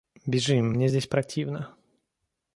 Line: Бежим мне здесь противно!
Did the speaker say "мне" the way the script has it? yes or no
yes